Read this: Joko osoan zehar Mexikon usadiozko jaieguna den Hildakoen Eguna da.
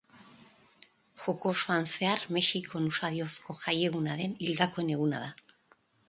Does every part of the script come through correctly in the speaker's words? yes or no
yes